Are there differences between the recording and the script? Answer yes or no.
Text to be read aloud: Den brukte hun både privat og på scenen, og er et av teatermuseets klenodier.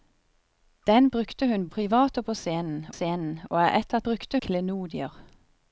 yes